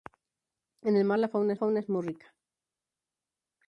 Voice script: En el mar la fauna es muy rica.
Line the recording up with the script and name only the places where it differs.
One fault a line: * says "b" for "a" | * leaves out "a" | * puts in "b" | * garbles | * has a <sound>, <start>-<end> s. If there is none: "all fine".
* puts in "fauna"